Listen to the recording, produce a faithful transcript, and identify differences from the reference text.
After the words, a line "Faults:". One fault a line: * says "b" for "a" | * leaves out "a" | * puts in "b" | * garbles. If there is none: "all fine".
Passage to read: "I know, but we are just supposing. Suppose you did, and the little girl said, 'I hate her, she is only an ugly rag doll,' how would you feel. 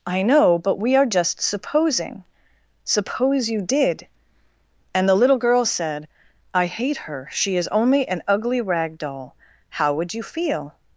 "I know, but we are just supposing. Suppose you did, and the little girl said, 'I hate her, she is only an ugly rag doll,' how would you feel.
Faults:
all fine